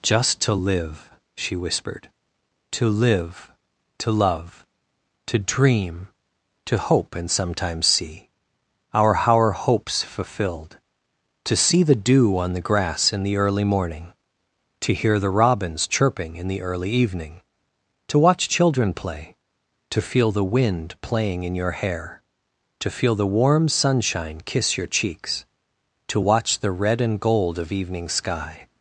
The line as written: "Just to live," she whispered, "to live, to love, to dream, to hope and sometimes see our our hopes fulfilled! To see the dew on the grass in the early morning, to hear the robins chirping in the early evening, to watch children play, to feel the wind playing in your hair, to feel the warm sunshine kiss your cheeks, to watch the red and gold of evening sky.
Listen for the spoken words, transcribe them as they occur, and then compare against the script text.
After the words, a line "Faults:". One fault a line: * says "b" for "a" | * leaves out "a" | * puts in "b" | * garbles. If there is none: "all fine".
"Just to live," she whispered, "to live, to love, to dream, to hope and sometimes see our our hopes fulfilled! To see the dew on the grass in the early morning, to hear the robins chirping in the early evening, to watch children play, to feel the wind playing in your hair, to feel the warm sunshine kiss your cheeks, to watch the red and gold of evening sky.
Faults:
all fine